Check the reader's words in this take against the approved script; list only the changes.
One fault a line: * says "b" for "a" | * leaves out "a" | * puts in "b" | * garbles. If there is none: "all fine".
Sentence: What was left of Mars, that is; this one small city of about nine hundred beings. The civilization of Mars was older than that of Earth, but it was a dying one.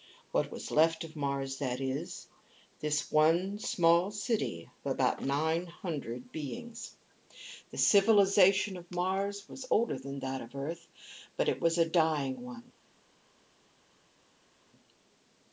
all fine